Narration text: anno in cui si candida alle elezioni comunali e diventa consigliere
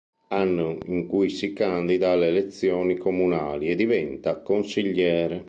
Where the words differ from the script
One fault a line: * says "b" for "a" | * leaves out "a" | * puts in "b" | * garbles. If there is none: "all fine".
all fine